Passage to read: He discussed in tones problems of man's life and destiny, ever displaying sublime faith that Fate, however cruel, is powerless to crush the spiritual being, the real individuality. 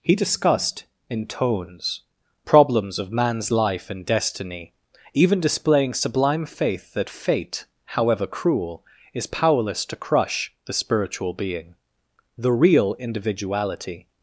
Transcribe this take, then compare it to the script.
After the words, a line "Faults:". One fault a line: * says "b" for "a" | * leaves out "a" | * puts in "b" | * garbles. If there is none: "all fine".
He discussed in tones problems of man's life and destiny, even displaying sublime faith that Fate, however cruel, is powerless to crush the spiritual being, the real individuality.
Faults:
* says "even" for "ever"